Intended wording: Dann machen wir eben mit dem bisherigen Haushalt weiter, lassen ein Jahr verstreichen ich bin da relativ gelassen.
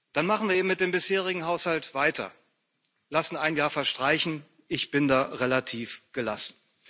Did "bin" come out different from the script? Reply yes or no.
no